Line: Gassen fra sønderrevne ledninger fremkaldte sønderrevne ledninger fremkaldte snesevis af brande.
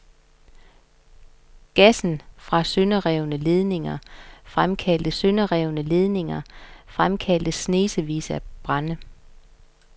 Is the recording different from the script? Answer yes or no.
no